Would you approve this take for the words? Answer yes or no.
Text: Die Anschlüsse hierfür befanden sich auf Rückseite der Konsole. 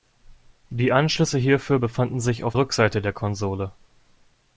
yes